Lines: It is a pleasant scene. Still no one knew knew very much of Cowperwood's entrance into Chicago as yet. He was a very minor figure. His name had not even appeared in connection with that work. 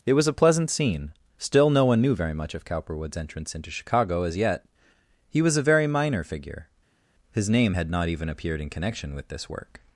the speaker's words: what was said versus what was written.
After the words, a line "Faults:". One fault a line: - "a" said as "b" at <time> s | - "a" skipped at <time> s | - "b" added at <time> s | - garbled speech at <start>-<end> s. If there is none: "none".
It was a pleasant scene. Still no one knew very much of Cowperwood's entrance into Chicago as yet. He was a very minor figure. His name had not even appeared in connection with this work.
Faults:
- "is" said as "was" at 0.1 s
- "knew" skipped at 2.1 s
- "that" said as "this" at 9.3 s